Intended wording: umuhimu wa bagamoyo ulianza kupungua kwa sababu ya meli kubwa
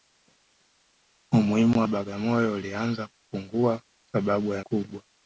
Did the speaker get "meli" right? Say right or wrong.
wrong